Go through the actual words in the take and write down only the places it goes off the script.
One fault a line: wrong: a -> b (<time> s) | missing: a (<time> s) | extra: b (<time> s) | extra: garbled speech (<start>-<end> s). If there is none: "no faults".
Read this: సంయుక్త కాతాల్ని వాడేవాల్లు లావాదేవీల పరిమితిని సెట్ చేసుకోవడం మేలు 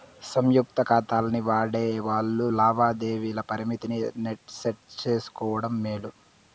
no faults